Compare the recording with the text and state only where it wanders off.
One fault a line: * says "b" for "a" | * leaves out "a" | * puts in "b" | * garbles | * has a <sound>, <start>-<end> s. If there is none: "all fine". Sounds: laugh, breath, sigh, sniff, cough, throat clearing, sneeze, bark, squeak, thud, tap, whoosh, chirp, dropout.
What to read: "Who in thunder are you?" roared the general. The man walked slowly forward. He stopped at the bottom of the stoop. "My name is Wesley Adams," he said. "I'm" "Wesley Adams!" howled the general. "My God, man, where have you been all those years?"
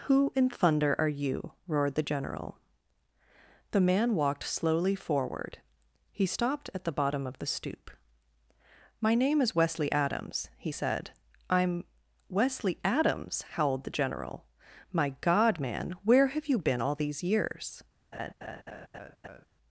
* says "these" for "those"
* has a laugh, 18.1-19.5 s